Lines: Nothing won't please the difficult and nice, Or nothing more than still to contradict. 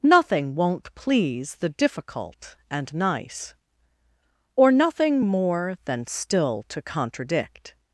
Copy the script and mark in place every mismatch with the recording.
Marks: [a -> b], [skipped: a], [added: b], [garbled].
Nothing won't please the difficult and nice, Or nothing more than still to contradict.